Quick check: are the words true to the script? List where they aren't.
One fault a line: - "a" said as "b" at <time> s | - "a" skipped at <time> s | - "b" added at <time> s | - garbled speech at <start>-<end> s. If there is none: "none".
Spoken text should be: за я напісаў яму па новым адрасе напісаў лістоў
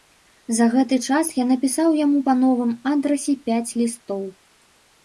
- "гэты час" added at 0.8 s
- "напісаў" said as "пяць" at 3.5 s